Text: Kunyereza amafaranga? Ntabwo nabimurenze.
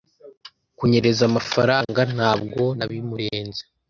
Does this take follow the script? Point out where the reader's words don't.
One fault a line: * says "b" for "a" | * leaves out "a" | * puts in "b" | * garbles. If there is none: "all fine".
all fine